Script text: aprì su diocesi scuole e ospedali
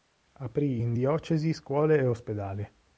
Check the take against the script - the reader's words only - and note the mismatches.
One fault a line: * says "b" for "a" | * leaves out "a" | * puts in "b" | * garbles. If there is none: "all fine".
* says "in" for "su"